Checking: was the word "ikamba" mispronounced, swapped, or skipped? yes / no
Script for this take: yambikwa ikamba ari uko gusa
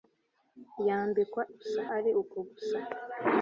yes